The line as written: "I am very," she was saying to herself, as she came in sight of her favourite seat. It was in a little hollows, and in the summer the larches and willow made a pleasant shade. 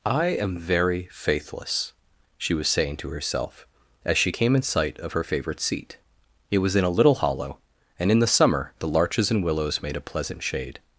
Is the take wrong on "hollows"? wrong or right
wrong